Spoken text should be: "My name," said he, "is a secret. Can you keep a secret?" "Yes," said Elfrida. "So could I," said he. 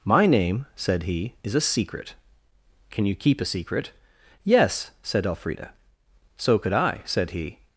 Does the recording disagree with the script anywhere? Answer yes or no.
no